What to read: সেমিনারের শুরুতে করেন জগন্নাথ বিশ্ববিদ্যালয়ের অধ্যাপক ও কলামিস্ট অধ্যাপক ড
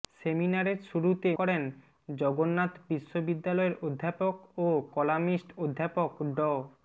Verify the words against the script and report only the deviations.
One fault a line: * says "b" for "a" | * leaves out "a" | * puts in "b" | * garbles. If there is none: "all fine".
all fine